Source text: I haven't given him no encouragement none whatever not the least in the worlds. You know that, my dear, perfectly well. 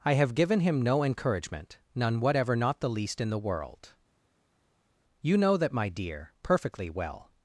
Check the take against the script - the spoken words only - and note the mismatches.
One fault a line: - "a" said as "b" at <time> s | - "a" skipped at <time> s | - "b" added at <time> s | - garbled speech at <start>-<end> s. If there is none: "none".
- "haven't" said as "have" at 0.1 s
- "worlds" said as "world" at 3.4 s